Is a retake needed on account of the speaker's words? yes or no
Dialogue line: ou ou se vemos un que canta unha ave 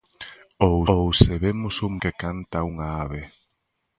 no